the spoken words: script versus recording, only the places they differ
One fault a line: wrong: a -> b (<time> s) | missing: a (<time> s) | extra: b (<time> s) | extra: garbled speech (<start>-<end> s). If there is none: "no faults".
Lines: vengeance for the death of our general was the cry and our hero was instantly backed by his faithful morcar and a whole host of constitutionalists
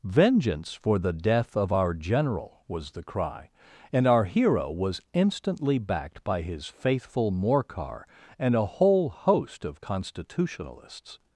no faults